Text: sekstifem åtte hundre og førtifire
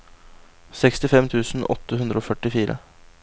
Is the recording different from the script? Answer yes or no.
yes